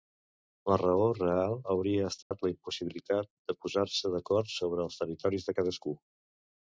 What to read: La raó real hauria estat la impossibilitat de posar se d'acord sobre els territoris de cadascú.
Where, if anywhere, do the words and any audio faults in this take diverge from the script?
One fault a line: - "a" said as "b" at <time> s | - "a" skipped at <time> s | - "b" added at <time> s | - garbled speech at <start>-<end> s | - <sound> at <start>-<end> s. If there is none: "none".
- dropout at 2.2-2.3 s